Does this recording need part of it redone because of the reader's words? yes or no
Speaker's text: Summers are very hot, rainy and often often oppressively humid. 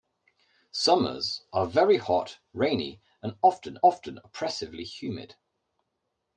no